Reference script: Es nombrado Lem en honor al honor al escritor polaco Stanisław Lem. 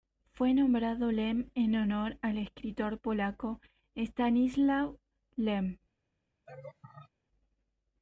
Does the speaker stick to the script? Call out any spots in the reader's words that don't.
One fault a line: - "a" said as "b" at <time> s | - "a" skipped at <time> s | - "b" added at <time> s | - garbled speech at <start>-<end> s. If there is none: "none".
- "Es" said as "Fue" at 0.3 s
- "honor al" skipped at 2.4 s